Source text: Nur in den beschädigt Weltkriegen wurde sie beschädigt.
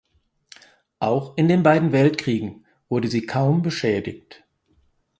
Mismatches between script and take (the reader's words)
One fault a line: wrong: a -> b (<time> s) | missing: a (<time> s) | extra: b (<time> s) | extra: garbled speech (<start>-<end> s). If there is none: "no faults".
wrong: Nur -> Auch (1.0 s)
wrong: beschädigt -> beiden (1.6 s)
extra: kaum (3.3 s)